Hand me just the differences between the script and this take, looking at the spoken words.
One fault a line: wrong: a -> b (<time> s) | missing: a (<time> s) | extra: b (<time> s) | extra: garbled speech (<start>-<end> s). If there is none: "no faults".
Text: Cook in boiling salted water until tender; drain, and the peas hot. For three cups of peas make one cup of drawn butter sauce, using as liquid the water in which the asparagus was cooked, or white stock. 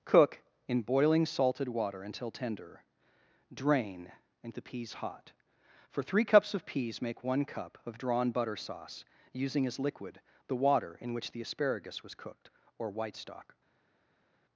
no faults